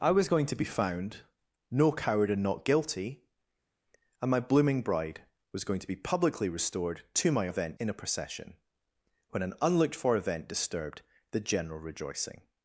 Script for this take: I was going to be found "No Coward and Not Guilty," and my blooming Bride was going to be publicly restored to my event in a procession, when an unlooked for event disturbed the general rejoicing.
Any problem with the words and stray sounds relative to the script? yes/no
no